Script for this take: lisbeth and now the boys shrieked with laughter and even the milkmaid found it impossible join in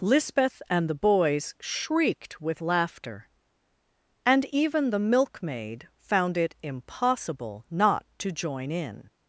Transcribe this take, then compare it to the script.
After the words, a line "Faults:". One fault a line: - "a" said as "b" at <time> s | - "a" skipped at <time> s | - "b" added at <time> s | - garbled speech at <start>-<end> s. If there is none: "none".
lisbeth and the boys shrieked with laughter and even the milkmaid found it impossible not to join in
Faults:
- "now" skipped at 0.9 s
- "not to" added at 7.7 s